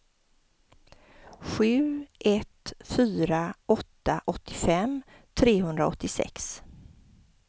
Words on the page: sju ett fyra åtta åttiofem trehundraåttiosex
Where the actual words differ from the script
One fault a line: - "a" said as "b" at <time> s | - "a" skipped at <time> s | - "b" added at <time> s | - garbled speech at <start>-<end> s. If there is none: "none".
none